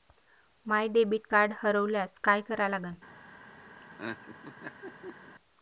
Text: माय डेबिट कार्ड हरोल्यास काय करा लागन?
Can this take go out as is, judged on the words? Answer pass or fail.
pass